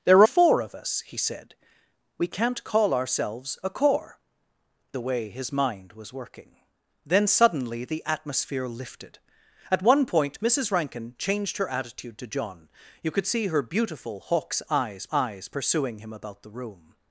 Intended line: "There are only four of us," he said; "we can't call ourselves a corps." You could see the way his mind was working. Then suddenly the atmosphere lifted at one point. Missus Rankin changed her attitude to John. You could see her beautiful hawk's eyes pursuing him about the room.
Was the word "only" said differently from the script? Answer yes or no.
yes